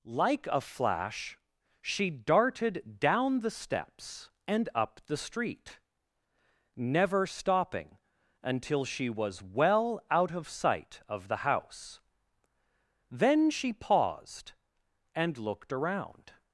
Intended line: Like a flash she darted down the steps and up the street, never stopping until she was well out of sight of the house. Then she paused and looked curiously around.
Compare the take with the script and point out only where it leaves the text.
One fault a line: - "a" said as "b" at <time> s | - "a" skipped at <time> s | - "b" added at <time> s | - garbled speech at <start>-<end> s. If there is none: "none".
- "curiously" skipped at 15.7 s